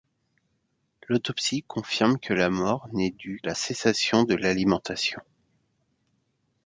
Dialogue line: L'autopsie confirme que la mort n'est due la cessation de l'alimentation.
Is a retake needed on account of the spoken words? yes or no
no